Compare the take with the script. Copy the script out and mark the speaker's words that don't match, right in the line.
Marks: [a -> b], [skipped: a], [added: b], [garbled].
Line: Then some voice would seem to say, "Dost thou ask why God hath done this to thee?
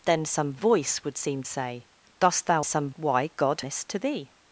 Then some voice would seem [skipped: to] say, "Dost thou [ask -> some] why God [skipped: hath done] this to thee?